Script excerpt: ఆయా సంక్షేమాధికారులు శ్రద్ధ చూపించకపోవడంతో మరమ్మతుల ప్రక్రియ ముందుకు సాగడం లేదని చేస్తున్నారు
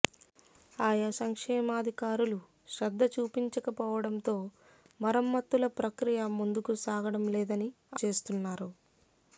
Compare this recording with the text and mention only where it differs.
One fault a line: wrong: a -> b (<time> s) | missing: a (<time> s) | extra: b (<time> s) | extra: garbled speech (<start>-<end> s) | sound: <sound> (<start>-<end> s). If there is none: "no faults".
no faults